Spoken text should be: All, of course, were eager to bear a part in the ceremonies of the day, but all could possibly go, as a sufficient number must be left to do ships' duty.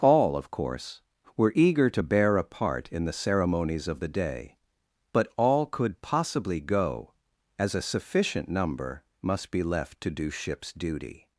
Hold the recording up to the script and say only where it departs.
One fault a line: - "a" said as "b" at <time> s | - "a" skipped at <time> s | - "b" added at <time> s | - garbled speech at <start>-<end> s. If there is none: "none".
none